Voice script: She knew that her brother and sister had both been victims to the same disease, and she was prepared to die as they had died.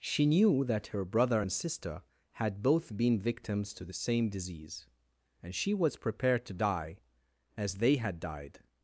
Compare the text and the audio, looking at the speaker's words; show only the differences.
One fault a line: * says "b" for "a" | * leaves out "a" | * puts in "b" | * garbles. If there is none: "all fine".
all fine